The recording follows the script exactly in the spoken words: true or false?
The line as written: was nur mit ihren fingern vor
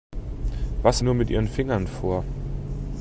true